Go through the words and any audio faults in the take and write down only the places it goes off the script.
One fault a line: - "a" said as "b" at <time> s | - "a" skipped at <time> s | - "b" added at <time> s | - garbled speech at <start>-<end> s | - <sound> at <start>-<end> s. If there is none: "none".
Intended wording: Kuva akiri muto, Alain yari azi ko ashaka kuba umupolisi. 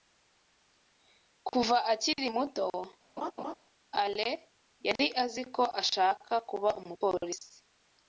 - laugh at 3.2-3.5 s